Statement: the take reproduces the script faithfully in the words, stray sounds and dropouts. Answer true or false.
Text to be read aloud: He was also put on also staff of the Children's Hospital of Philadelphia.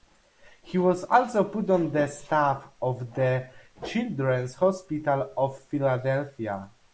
false